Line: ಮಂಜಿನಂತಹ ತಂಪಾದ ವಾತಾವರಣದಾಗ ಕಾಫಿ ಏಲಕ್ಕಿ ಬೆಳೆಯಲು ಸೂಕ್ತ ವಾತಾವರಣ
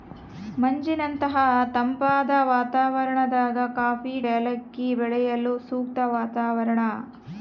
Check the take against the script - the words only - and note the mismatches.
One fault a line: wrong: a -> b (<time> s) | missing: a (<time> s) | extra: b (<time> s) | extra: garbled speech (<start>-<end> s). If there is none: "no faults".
no faults